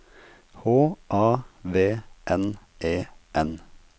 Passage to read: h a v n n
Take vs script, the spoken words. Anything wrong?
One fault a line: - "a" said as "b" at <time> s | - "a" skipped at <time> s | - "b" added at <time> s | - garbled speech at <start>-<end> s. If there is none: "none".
- "e" added at 2.8 s